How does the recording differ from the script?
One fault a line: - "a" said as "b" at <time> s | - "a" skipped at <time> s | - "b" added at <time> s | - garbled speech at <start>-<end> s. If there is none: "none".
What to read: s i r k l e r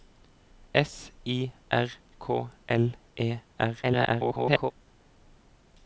- garbled speech at 3.8-4.7 s